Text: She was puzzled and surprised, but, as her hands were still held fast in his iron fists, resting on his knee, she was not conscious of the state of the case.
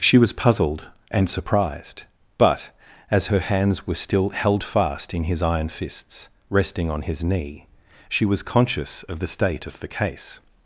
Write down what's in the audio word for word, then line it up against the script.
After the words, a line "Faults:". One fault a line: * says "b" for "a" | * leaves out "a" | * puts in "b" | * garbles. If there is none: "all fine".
She was puzzled and surprised, but, as her hands were still held fast in his iron fists, resting on his knee, she was conscious of the state of the case.
Faults:
* leaves out "not"